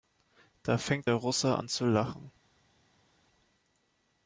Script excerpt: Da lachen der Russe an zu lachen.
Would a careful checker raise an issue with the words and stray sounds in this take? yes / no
yes